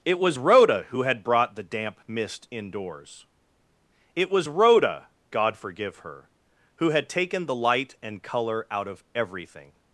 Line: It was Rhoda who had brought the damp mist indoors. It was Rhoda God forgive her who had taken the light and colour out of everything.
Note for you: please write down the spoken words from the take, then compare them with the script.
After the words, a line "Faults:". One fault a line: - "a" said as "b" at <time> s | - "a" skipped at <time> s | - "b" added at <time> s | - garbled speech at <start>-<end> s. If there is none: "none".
It was Rhoda who had brought the damp mist indoors. It was Rhoda God forgive her who had taken the light and colour out of everything.
Faults:
none